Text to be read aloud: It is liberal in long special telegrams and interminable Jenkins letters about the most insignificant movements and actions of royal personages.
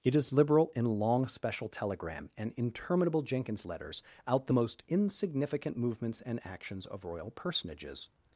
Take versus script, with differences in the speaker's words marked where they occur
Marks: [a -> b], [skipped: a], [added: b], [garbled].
It is liberal in long special [telegrams -> telegram] and interminable Jenkins letters [about -> out] the most insignificant movements and actions of royal personages.